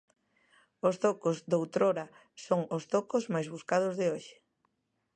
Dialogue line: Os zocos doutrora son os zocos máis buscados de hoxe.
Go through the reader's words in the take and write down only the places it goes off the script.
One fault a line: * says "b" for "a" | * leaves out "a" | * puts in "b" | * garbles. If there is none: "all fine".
all fine